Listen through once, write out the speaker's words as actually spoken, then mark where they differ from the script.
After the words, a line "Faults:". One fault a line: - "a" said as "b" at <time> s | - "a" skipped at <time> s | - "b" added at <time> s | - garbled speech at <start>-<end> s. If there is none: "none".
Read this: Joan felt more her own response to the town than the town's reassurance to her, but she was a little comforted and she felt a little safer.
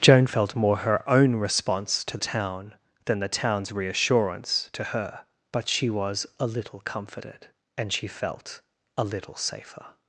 Joan felt more her own response to town than the town's reassurance to her, but she was a little comforted and she felt a little safer.
Faults:
- "the" skipped at 2.2 s